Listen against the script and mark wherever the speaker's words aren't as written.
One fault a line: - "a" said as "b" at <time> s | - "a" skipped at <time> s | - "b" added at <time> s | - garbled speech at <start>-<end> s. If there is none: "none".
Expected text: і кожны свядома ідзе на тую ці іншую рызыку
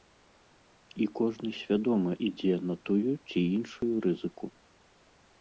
none